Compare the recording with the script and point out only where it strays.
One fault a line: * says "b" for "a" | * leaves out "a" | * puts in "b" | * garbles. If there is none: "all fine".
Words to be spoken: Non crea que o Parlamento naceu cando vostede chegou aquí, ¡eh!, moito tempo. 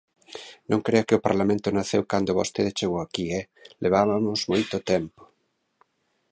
* puts in "levabamos"